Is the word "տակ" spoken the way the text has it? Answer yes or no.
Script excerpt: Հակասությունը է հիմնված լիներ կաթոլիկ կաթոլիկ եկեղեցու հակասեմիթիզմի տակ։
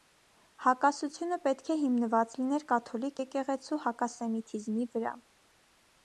no